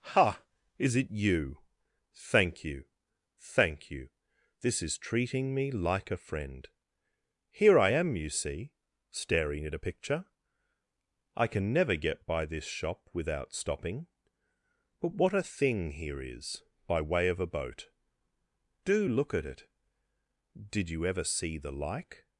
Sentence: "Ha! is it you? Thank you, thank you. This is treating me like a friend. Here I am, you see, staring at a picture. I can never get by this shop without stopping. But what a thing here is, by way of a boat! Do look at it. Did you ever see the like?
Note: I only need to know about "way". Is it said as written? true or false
true